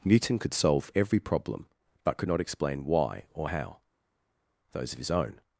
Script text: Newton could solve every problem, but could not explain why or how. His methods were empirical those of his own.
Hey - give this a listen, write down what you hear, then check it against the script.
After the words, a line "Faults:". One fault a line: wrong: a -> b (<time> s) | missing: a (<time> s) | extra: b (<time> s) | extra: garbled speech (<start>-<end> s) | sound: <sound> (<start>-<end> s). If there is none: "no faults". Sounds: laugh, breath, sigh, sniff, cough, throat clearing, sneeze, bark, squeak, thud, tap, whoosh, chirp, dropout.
Newton could solve every problem, but could not explain why or how. those of his own.
Faults:
missing: His methods were empirical (3.8 s)